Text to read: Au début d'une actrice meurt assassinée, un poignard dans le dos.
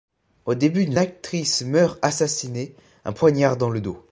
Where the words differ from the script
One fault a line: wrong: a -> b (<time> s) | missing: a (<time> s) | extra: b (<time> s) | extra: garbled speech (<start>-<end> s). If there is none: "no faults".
no faults